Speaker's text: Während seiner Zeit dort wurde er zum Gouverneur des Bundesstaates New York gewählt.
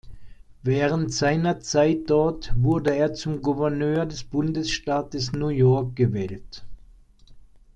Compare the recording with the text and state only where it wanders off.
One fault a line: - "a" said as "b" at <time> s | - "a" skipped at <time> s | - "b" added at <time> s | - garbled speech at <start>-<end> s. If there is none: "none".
none